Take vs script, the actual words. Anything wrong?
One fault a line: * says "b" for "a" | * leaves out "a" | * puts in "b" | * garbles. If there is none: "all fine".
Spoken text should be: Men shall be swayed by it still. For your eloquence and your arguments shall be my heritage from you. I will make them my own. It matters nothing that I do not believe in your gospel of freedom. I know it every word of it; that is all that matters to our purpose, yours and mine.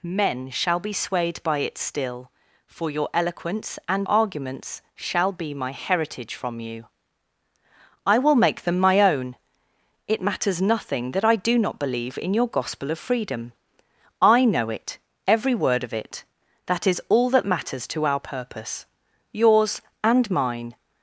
* leaves out "your"